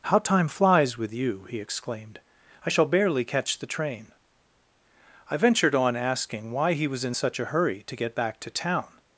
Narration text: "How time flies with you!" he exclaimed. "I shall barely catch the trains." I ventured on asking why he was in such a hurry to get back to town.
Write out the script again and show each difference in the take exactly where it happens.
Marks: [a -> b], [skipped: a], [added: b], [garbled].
"How time flies with you!" he exclaimed. "I shall barely catch the [trains." -> train] I ventured on asking why he was in such a hurry to get back to town.